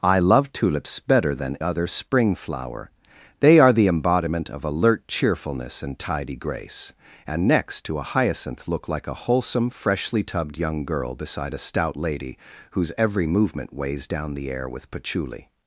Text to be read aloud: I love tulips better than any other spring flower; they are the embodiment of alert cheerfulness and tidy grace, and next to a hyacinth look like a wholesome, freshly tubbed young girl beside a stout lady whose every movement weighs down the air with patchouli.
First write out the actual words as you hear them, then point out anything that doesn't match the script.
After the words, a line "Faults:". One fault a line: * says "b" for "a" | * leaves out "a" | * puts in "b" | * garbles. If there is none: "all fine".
I love tulips better than other spring flower; they are the embodiment of alert cheerfulness and tidy grace, and next to a hyacinth look like a wholesome, freshly tubbed young girl beside a stout lady whose every movement weighs down the air with patchouli.
Faults:
* leaves out "any"